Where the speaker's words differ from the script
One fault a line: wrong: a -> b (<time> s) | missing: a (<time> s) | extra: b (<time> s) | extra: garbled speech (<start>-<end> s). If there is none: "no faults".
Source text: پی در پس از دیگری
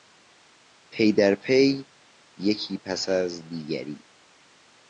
extra: پی یکی (1.4 s)